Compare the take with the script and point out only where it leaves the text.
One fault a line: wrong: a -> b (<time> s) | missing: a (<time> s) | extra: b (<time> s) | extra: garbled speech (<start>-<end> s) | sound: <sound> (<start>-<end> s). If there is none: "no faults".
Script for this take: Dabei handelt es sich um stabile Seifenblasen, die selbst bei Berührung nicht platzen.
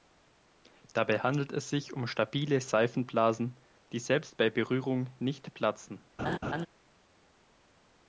sound: laugh (6.2-6.7 s)